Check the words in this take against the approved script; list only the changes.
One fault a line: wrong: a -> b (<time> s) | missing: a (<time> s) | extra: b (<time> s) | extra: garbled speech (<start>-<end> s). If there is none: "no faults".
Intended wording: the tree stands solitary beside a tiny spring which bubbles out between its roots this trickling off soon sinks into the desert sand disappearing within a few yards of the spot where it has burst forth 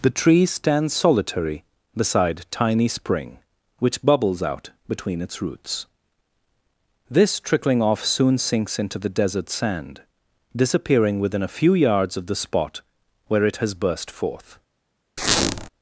missing: a (2.5 s)